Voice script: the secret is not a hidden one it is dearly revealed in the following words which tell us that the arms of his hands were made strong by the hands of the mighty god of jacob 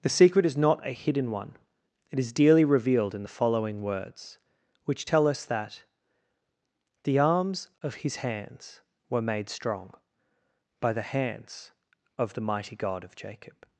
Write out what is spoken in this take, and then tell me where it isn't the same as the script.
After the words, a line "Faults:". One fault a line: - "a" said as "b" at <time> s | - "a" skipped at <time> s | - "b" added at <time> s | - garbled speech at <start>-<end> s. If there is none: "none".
the secret is not a hidden one it is dearly revealed in the following words which tell us that the arms of his hands were made strong by the hands of the mighty god of jacob
Faults:
none